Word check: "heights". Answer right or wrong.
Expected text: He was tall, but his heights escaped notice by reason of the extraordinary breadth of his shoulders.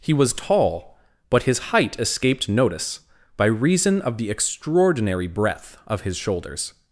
wrong